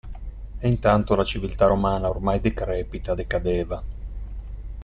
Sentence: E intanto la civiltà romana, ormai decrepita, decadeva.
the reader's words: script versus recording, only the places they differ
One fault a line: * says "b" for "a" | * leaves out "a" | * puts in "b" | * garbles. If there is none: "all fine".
all fine